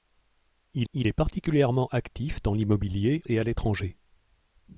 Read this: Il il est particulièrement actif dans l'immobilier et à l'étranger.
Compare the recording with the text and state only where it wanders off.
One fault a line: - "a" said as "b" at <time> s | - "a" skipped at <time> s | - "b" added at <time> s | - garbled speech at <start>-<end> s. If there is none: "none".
none